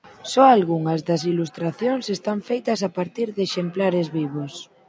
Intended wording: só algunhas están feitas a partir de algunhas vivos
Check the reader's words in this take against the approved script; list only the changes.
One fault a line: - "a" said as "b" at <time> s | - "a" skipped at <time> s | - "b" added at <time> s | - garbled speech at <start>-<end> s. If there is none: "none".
- "das ilustracións" added at 1.1 s
- "algunhas" said as "exemplares" at 3.5 s